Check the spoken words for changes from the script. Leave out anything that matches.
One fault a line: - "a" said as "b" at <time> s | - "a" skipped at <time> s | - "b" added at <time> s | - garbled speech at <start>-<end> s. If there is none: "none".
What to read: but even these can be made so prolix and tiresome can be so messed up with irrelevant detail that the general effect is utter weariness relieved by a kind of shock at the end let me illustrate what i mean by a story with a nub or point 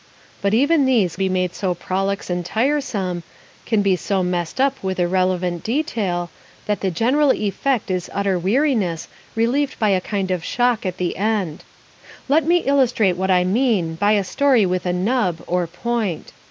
- "can" skipped at 1.1 s